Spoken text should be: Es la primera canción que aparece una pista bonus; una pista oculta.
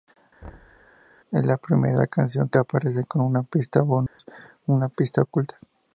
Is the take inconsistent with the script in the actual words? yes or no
yes